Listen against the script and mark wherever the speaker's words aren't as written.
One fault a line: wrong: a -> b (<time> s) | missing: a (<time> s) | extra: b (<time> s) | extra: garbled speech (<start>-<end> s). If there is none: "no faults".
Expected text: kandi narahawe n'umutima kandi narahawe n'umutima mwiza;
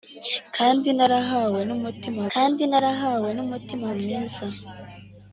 no faults